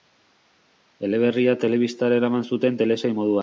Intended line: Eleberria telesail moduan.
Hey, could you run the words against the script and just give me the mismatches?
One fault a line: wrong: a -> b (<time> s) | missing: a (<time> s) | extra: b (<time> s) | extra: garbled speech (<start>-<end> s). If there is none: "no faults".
extra: telebistara eraman zuten (1.6 s)